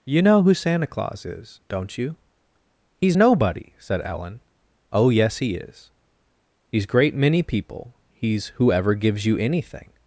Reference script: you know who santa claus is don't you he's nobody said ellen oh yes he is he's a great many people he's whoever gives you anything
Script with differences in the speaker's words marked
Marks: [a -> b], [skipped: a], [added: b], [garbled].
you know who santa claus is don't you he's nobody said ellen oh yes he is he's [skipped: a] great many people he's whoever gives you anything